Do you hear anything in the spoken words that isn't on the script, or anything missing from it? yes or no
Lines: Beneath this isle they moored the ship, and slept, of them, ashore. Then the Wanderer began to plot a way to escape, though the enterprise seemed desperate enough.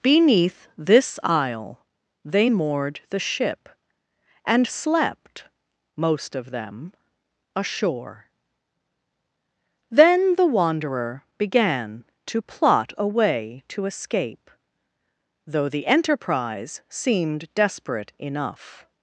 yes